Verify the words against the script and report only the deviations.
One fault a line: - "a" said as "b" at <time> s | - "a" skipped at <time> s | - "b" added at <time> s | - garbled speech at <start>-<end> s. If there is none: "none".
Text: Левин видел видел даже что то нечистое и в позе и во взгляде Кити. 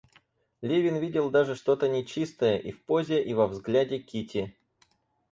- "видел" skipped at 1.3 s